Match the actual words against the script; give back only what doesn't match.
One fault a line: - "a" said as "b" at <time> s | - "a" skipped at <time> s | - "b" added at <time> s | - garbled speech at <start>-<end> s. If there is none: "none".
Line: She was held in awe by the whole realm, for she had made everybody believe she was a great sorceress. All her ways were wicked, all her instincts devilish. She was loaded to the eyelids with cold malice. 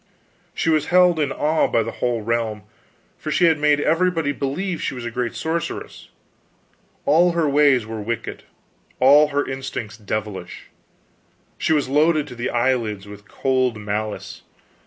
none